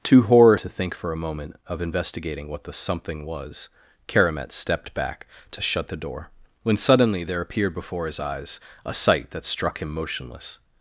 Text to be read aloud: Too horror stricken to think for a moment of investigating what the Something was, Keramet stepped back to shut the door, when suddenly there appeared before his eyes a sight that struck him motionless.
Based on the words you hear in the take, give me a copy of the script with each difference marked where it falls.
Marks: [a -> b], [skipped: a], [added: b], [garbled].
Too horror [skipped: stricken] to think for a moment of investigating what the Something was, Keramet stepped back to shut the door, when suddenly there appeared before his eyes a sight that struck him motionless.